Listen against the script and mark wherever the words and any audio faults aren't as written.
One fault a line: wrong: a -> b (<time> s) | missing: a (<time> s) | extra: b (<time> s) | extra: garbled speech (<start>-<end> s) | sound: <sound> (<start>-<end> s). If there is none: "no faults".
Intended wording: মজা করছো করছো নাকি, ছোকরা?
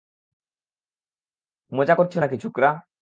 missing: করছো (2.2 s)